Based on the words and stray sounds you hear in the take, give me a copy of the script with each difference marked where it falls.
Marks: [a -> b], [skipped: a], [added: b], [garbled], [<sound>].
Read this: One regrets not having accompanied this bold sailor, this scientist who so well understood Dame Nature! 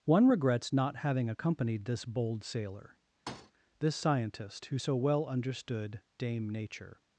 One regrets not having accompanied this bold sailor, [thud] this scientist who so well understood Dame Nature!